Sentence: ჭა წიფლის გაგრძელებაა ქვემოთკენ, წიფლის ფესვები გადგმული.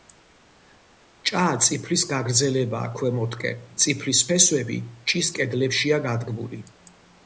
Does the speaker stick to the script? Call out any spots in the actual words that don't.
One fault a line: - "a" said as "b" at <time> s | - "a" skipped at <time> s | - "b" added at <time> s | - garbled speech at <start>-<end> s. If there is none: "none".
- "ჭის კედლებშია" added at 5.1 s